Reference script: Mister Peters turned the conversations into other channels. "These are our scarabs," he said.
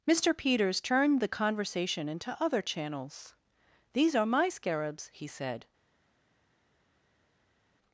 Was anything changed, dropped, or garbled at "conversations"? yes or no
yes